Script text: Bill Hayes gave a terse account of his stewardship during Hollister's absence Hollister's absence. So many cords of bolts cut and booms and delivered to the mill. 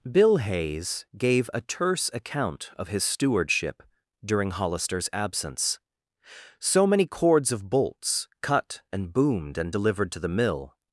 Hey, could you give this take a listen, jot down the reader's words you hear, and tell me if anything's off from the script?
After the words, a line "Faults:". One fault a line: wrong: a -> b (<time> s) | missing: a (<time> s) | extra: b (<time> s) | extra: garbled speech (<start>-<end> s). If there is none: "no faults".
Bill Hayes gave a terse account of his stewardship during Hollister's absence. So many cords of bolts cut and boomed and delivered to the mill.
Faults:
missing: Hollister's absence (5.8 s)
wrong: booms -> boomed (9.1 s)